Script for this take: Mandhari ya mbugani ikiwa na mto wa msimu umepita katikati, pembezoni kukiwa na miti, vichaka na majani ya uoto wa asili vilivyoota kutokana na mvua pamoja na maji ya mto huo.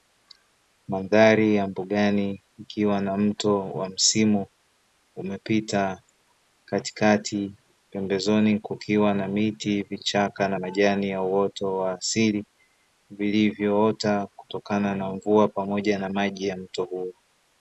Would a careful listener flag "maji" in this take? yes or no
no